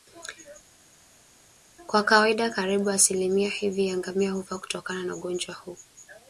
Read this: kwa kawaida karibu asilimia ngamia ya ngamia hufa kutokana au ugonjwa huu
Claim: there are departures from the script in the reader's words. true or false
true